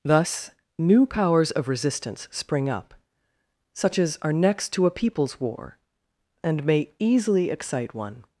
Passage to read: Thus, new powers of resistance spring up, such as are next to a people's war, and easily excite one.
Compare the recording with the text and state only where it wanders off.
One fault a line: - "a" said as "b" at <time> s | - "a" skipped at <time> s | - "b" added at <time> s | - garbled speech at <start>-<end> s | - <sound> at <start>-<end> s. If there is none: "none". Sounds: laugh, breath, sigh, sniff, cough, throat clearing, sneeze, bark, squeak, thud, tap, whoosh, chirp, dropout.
- "may" added at 6.7 s